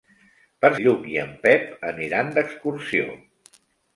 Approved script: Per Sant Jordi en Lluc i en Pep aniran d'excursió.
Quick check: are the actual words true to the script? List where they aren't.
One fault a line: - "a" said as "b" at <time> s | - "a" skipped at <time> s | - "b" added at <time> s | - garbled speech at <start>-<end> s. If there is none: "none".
- "Sant Jordi en" skipped at 0.7 s